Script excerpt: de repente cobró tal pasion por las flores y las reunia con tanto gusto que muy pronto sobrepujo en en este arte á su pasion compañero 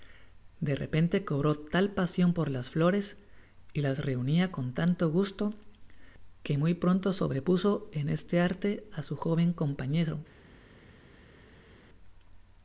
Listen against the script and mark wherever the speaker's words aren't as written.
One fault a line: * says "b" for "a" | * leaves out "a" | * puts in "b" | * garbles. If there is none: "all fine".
* leaves out "en"
* says "joven" for "pasion"